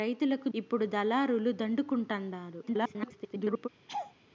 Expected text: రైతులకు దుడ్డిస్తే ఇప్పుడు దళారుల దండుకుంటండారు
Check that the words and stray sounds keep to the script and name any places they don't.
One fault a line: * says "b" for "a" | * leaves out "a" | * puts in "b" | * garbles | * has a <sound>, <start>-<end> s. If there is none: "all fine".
* leaves out "దుడ్డిస్తే"
* garbles
* has a laugh, 3.9-4.1 s